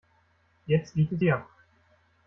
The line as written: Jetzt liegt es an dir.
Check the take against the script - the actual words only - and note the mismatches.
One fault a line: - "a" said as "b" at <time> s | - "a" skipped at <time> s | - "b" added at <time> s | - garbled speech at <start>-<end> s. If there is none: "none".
- "an" skipped at 1.2 s